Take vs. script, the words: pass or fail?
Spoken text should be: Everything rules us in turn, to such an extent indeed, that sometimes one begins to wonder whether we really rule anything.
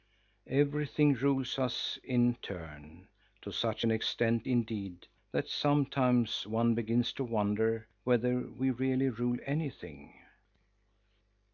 pass